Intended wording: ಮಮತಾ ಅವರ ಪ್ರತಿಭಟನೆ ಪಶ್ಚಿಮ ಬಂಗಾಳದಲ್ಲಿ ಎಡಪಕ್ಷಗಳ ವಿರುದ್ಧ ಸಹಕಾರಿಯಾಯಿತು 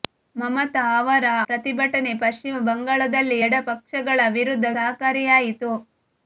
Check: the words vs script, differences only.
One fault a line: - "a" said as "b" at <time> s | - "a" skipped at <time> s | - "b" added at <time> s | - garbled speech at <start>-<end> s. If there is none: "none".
none